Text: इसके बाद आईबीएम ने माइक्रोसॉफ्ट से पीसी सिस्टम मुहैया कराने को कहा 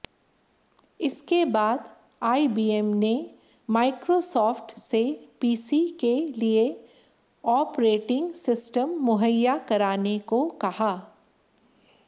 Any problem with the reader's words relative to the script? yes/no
yes